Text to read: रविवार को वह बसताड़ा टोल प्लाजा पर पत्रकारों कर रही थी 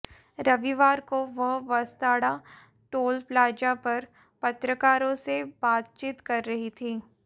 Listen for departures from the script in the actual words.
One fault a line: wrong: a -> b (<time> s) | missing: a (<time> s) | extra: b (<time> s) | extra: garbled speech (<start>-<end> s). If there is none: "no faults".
extra: से बातचीत (5.2 s)